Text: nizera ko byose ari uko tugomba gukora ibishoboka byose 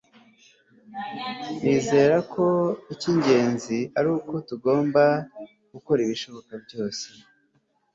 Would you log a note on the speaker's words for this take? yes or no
yes